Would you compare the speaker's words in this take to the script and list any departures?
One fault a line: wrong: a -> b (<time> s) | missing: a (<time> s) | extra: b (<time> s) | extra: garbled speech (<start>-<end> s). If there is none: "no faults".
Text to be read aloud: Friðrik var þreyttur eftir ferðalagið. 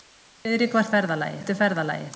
wrong: þreyttur -> ferðalagið (1.0 s)